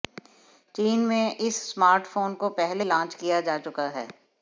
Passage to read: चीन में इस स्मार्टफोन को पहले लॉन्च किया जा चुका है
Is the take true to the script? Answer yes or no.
yes